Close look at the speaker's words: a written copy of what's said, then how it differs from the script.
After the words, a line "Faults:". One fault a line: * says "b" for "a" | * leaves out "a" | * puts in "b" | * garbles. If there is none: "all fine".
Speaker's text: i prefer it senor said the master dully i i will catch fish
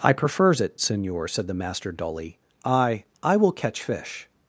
i prefers it senor said the master dully i i will catch fish
Faults:
* says "prefers" for "prefer"